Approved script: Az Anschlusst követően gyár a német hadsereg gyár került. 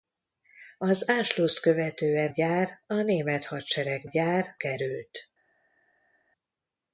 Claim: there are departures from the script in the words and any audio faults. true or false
false